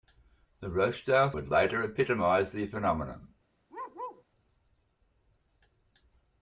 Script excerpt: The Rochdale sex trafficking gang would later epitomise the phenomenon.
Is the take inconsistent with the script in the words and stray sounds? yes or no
yes